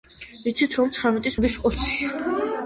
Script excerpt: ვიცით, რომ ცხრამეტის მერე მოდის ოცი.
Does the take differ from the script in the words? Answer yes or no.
yes